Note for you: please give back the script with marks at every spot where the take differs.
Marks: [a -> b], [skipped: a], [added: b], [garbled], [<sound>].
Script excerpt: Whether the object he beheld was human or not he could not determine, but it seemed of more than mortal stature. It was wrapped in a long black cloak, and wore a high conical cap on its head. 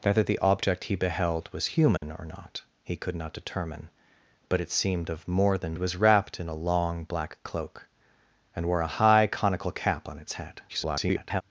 Whether the object he beheld was human [dropout] or not he could not determine, but it seemed of more than [skipped: mortal stature. It] was wrapped in a long black cloak, and wore a high conical cap on its head. [garbled]